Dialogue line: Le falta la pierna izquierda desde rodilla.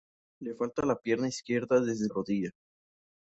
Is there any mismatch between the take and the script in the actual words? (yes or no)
no